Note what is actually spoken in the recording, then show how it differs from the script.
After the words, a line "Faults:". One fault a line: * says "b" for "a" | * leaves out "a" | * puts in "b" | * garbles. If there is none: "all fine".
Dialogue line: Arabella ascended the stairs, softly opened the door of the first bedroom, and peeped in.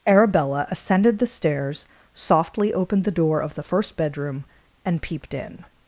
Arabella ascended the stairs, softly opened the door of the first bedroom, and peeped in.
Faults:
all fine